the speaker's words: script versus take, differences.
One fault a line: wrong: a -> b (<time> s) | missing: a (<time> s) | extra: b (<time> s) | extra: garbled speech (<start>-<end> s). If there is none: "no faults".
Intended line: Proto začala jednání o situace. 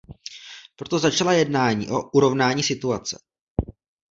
extra: urovnání (2.1 s)